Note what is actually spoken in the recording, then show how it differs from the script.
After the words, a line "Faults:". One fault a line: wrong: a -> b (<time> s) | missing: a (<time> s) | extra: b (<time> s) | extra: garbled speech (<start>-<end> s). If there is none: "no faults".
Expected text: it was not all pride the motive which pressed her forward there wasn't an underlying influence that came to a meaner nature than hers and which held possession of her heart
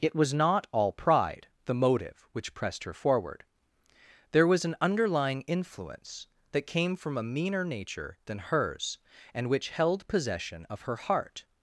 it was not all pride the motive which pressed her forward there was an underlying influence that came from a meaner nature than hers and which held possession of her heart
Faults:
wrong: wasn't -> was (4.5 s)
wrong: to -> from (7.0 s)